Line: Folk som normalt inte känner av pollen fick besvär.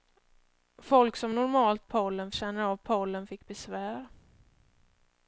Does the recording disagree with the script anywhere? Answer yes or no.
yes